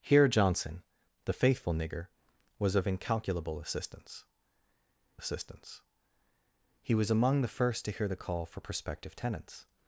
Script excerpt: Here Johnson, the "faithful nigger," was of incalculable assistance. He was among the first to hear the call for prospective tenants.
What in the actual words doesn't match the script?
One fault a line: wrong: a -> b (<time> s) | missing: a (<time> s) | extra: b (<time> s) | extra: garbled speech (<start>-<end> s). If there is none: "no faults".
extra: assistance (5.2 s)